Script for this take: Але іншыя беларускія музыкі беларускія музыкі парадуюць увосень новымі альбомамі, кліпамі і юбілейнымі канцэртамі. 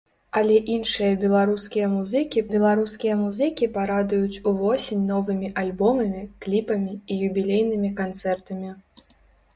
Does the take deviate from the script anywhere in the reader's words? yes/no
no